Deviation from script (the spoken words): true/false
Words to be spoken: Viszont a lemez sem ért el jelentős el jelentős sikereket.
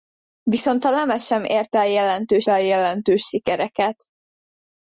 false